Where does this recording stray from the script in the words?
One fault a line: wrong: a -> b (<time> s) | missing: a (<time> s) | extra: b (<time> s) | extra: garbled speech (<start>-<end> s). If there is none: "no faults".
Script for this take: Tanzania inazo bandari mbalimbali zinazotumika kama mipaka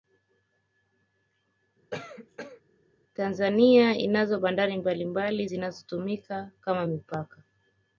no faults